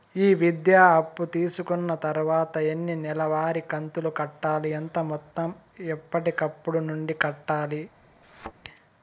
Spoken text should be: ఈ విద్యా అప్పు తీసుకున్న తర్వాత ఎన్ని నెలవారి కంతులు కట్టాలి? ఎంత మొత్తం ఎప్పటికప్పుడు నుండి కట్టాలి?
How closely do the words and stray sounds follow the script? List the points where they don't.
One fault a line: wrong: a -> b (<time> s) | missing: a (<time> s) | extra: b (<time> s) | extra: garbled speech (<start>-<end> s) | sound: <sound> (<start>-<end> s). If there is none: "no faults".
sound: thud (8.2-8.5 s)